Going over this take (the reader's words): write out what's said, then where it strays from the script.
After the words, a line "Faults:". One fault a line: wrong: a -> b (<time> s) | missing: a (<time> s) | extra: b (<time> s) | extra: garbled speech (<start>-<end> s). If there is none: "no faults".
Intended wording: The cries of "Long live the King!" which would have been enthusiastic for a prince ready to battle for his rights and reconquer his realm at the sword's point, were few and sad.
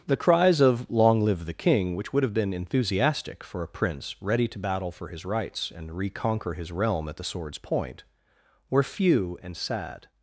The cries of "Long live the King!" which would have been enthusiastic for a prince ready to battle for his rights and reconquer his realm at the sword's point, were few and sad.
Faults:
no faults